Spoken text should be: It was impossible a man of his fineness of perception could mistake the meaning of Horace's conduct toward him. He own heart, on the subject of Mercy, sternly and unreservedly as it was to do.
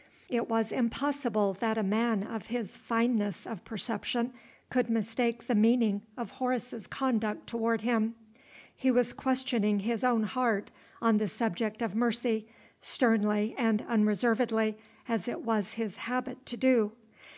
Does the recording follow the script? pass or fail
fail